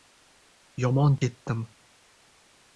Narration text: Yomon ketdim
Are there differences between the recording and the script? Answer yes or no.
no